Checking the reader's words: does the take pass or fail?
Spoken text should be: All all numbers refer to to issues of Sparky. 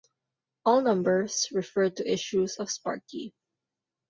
fail